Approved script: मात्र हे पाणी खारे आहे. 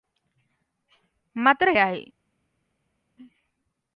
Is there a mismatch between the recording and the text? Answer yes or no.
yes